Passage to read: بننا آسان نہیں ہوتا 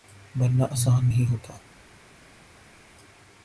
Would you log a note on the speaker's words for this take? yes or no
no